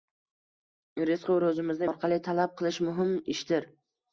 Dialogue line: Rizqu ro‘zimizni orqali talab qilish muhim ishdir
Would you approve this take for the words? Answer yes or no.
yes